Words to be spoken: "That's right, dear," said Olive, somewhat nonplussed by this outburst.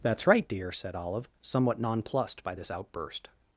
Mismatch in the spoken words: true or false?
false